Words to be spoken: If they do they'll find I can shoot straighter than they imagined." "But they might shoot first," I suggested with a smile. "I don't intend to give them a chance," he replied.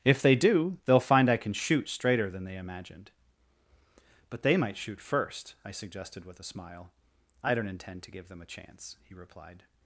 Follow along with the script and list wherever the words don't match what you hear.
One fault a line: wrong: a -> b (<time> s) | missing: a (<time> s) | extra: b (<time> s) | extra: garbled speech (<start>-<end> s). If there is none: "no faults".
no faults